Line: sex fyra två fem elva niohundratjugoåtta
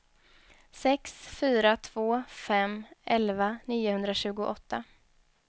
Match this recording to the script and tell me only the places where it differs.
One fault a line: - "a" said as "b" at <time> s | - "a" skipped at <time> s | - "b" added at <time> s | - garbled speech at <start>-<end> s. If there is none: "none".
none